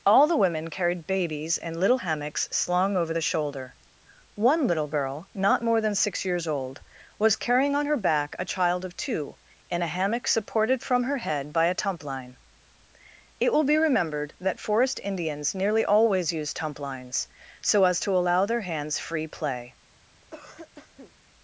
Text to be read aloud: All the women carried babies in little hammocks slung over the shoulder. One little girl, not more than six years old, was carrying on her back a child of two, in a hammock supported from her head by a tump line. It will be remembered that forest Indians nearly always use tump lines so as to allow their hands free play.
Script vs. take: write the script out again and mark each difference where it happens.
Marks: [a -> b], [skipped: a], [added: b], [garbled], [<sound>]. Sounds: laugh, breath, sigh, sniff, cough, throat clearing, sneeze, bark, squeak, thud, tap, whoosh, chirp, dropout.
All the women carried babies in little hammocks slung over the shoulder. One little girl, not more than six years old, was carrying on her back a child of two, in a hammock supported from her head by a tump line. It will be remembered that forest Indians nearly always use tump lines so as to allow their hands free play. [cough]